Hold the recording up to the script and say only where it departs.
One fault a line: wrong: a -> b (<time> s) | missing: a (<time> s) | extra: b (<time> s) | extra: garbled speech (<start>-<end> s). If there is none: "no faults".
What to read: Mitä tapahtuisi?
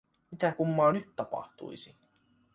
extra: kummaa nyt (0.5 s)